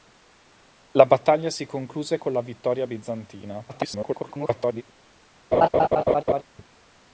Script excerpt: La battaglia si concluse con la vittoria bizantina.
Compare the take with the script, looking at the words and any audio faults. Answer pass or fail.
fail